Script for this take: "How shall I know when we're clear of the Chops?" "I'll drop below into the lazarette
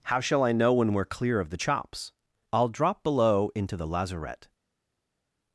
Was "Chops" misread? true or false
false